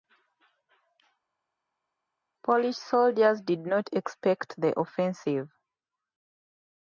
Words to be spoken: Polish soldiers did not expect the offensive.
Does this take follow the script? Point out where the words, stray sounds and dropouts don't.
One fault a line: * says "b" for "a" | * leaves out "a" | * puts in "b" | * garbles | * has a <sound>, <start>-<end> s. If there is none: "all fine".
all fine